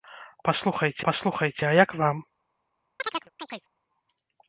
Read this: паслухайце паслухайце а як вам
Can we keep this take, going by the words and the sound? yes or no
no